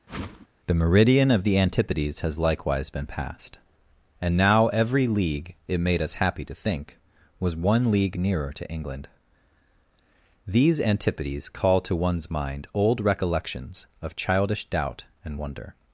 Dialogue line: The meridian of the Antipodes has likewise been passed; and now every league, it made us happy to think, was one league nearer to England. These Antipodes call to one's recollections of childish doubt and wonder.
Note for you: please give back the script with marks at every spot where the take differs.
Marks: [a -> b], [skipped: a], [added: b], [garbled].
The meridian of the Antipodes has likewise been passed; and now every league, it made us happy to think, was one league nearer to England. These Antipodes call to one's [added: mind old] recollections of childish doubt and wonder.